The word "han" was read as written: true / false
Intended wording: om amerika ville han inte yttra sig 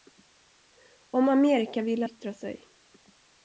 false